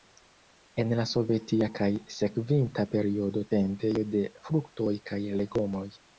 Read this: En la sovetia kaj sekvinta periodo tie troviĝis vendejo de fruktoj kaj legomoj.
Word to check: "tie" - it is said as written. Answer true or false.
false